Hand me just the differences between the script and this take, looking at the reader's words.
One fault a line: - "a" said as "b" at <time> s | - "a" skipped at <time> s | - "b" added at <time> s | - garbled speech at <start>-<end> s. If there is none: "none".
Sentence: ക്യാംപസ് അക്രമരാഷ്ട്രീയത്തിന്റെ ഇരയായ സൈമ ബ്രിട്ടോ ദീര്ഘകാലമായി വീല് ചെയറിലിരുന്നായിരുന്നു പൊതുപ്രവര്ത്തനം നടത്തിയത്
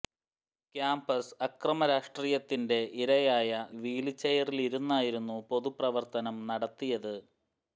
- "സൈമ ബ്രിട്ടോ ദീര്ഘകാലമായി" skipped at 3.5 s